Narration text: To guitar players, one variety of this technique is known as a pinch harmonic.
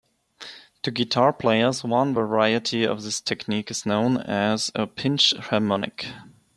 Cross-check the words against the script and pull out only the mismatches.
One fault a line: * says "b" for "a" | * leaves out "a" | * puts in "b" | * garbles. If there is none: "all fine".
all fine